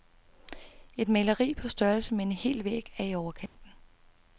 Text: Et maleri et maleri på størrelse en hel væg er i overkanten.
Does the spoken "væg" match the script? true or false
true